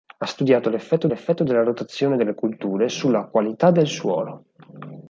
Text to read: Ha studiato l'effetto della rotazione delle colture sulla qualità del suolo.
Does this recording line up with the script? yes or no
no